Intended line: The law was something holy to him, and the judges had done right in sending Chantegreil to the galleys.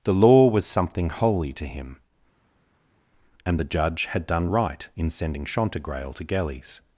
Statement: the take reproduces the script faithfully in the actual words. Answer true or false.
false